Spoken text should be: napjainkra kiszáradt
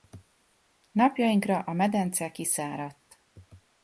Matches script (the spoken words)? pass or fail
fail